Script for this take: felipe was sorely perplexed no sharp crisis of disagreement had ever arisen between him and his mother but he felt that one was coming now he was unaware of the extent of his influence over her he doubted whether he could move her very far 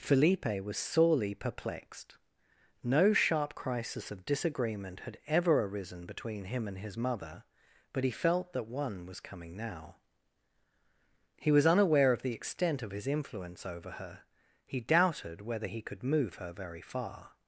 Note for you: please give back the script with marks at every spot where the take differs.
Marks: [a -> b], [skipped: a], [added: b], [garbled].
felipe was sorely perplexed no sharp crisis of disagreement had ever arisen between him and his mother but he felt that one was coming now he was unaware of the extent of his influence over her he doubted whether he could move her very far